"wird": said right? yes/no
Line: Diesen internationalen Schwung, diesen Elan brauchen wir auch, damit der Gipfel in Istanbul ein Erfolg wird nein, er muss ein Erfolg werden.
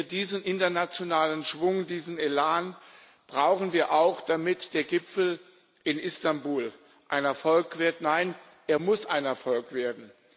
yes